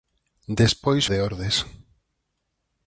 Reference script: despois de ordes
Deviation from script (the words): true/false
false